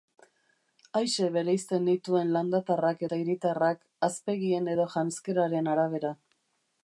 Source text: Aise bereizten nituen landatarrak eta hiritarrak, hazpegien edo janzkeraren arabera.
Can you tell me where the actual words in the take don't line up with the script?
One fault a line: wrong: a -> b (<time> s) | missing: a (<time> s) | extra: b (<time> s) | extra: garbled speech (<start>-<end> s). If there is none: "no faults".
no faults